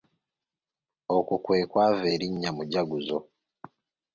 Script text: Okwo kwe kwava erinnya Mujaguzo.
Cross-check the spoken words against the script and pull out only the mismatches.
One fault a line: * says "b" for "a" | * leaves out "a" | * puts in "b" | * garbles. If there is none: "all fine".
all fine